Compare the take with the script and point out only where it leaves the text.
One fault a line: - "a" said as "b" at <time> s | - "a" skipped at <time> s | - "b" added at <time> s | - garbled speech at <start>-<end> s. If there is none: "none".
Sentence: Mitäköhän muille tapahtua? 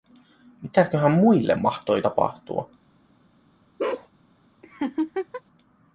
- "mahtoi" added at 1.5 s